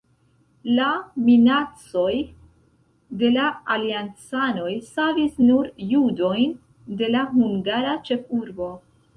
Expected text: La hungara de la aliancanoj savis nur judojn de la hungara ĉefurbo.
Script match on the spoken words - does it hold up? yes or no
no